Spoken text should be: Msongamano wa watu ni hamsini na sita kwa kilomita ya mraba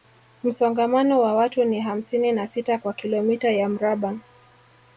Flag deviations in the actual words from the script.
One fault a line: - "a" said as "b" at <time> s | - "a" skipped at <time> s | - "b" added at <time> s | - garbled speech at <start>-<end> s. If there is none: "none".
none